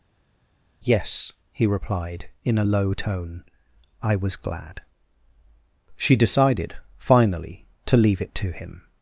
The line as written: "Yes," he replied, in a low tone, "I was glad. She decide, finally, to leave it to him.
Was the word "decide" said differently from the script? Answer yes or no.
yes